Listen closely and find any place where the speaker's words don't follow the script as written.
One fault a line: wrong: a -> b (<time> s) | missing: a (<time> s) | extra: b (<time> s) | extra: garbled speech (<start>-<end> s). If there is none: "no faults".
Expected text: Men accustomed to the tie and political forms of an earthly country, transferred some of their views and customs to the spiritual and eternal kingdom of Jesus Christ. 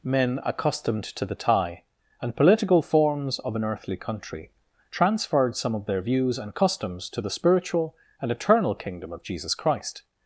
no faults